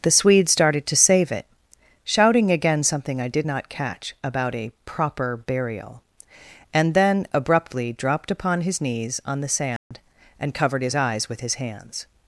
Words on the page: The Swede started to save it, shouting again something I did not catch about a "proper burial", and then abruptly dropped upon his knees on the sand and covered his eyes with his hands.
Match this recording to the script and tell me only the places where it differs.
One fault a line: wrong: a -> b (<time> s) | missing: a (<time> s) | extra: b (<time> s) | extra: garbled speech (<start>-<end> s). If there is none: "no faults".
no faults